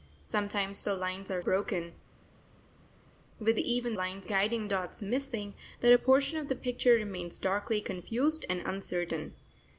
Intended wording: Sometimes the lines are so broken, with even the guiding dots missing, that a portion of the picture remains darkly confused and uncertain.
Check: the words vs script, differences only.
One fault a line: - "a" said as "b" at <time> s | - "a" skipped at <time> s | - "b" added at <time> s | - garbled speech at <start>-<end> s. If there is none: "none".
- "so" skipped at 1.4 s
- "the" said as "lines" at 3.9 s